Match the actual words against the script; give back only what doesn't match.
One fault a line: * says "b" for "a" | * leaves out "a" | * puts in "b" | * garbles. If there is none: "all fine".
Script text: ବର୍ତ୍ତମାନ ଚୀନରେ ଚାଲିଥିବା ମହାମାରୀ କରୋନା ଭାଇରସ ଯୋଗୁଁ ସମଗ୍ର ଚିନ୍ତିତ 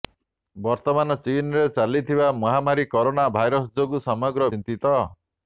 all fine